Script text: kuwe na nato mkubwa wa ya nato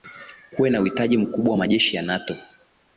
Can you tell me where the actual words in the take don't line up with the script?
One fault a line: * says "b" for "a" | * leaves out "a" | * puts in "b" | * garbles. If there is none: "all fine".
* says "uhitaji" for "nato"
* puts in "majeshi"